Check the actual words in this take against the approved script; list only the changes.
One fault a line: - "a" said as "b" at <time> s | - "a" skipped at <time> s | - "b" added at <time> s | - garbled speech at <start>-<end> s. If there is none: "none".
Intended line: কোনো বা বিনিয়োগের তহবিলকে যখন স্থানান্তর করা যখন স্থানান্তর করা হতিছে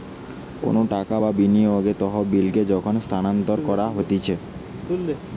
- "টাকা" added at 0.9 s
- "যখন স্থানান্তর করা" skipped at 3.8 s